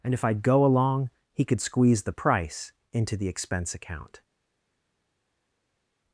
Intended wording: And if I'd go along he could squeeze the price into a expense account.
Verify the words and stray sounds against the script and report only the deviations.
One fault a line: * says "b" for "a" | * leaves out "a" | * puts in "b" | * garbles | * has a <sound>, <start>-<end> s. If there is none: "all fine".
* says "the" for "a"